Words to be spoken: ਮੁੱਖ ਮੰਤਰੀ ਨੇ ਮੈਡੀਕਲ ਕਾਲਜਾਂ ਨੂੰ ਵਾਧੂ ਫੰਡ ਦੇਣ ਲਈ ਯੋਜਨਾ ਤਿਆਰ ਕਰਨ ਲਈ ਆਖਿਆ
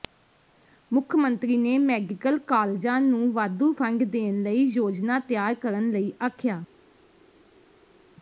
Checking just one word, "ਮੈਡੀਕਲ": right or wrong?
right